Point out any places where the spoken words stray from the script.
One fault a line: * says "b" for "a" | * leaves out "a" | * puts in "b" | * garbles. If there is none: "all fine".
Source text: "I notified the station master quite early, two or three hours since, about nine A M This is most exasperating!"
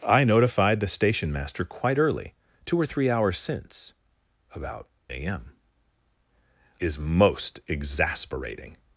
* leaves out "nine"
* leaves out "This"